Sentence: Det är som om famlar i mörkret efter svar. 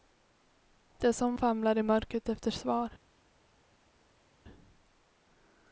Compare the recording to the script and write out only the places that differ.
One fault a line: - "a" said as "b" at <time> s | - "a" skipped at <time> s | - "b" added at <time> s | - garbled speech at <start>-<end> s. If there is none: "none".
none